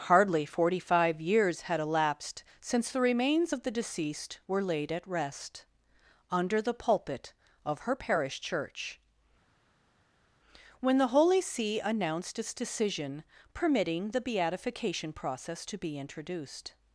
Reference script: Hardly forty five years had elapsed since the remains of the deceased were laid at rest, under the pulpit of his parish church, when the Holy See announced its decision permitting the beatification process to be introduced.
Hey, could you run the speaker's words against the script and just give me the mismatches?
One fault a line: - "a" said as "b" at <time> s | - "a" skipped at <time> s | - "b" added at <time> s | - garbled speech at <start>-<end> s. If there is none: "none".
- "his" said as "her" at 7.8 s